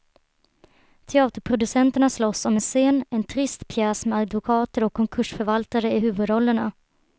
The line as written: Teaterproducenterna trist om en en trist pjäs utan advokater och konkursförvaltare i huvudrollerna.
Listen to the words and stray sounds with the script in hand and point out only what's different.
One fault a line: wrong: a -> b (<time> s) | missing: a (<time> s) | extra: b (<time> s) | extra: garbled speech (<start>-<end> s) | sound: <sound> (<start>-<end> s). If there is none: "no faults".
wrong: trist -> slåss (2.1 s)
extra: scen (2.6 s)
wrong: utan -> med (4.1 s)